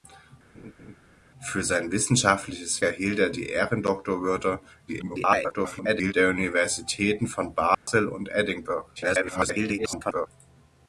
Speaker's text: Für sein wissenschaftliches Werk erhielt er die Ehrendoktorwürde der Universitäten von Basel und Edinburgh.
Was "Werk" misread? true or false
true